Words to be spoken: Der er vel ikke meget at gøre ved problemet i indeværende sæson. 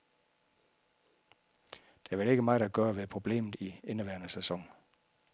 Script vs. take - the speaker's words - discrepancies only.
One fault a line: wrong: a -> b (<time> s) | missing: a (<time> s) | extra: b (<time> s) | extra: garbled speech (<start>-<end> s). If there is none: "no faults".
no faults